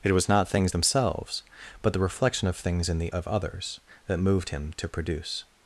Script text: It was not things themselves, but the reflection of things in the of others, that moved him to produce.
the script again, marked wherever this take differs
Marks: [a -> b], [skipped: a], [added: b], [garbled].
It was not things themselves, but the reflection of things in the of others, that moved him to produce.